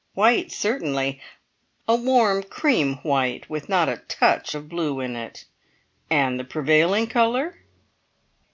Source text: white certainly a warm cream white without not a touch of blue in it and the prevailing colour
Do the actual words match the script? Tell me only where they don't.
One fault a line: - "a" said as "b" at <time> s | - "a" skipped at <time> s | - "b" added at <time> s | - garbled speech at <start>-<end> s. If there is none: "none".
- "without" said as "with" at 3.5 s